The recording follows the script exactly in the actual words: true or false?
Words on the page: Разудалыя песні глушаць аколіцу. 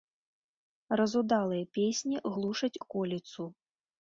true